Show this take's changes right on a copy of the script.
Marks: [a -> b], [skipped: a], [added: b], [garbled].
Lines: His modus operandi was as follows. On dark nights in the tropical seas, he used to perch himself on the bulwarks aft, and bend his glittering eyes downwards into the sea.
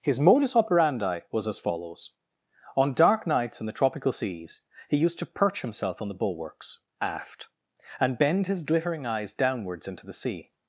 His modus operandi was as follows. On dark nights in the tropical seas, he used to perch himself on the bulwarks aft, and bend his glittering eyes downwards into the sea.